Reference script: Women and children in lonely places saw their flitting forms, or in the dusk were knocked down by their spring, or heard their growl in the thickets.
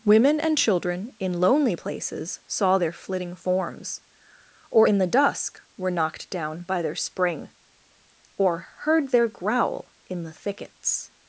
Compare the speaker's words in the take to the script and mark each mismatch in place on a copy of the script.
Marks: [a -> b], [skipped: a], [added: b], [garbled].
Women and children in lonely places saw their flitting forms, or in the dusk were knocked down by their spring, or heard their growl in the thickets.